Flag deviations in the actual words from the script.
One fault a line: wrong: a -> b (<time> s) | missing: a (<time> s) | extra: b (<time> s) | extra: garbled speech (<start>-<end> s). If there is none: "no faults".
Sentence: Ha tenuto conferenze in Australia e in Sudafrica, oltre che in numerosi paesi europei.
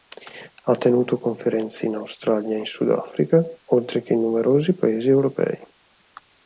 no faults